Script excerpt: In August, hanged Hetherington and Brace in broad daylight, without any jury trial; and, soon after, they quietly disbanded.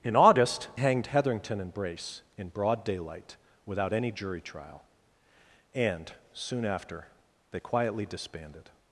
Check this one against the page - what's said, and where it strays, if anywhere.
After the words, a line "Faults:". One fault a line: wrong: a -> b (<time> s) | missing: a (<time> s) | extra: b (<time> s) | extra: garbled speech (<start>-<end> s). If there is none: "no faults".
In August, hanged Hetherington and Brace in broad daylight, without any jury trial; and, soon after, they quietly disbanded.
Faults:
no faults